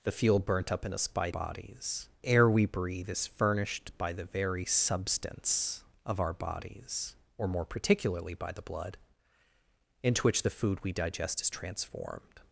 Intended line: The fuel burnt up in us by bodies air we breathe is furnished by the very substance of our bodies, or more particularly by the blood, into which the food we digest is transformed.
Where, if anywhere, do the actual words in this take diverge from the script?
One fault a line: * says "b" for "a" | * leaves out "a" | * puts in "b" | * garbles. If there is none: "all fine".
all fine